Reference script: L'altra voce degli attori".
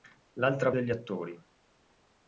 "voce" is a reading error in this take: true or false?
true